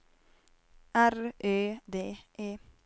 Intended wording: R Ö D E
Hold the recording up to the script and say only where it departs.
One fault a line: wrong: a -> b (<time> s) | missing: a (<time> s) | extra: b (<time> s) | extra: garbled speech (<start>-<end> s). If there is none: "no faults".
no faults